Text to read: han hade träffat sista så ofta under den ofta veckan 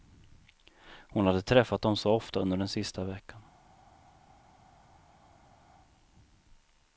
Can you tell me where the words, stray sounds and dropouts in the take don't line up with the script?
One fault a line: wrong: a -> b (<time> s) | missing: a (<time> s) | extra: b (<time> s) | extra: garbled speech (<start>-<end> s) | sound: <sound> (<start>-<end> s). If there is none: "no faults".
wrong: han -> hon (1.1 s)
wrong: sista -> dem (1.8 s)
wrong: ofta -> sista (2.7 s)